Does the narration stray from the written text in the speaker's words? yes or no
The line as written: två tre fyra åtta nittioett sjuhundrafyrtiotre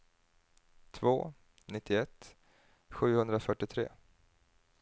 yes